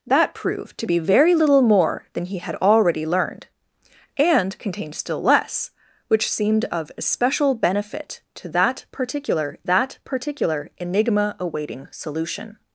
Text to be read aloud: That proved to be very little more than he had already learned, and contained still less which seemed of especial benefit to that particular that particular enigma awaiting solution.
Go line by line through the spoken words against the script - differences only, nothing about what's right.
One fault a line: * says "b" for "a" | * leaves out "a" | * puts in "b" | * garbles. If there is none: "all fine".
all fine